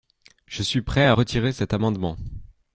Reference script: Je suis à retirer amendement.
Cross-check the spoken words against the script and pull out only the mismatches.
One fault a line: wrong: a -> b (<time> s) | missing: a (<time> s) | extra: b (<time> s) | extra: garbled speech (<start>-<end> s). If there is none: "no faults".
extra: prêt (0.8 s)
extra: cet (1.5 s)